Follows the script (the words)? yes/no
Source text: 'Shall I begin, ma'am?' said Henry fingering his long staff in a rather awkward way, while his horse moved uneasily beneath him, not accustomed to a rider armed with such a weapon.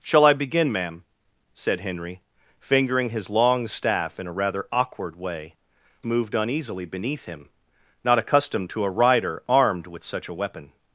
no